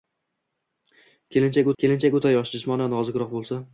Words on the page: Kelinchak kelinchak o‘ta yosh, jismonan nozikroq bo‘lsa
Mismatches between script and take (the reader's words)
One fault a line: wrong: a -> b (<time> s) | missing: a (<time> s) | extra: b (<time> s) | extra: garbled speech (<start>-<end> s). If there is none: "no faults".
no faults